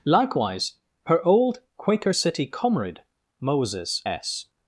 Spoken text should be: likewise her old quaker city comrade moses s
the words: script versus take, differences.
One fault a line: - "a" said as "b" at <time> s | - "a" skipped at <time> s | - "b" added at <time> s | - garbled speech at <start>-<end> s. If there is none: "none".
none